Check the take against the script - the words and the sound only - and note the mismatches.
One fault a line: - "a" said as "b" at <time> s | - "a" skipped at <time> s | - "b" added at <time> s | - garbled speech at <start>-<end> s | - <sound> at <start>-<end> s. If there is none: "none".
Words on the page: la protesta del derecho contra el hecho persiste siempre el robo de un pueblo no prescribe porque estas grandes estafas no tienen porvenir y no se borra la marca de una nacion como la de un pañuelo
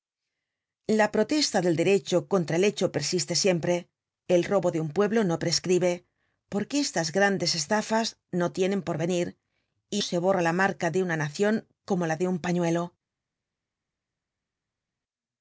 - "no" skipped at 10.0 s